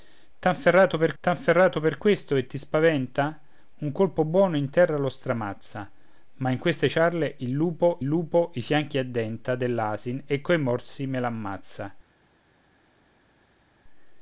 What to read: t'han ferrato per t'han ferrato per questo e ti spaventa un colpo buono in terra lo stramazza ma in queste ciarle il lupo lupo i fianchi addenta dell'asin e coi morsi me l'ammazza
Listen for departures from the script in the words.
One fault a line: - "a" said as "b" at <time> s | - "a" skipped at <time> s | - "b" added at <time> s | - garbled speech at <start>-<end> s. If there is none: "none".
none